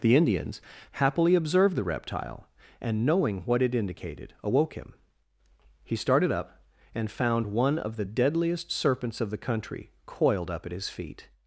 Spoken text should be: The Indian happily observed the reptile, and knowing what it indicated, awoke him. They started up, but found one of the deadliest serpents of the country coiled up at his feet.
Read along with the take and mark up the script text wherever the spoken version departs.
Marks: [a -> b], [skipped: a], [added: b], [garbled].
The [Indian -> Indians] happily observed the reptile, and knowing what it indicated, awoke him. [They -> He] started up, [but -> and] found one of the deadliest serpents of the country coiled up at his feet.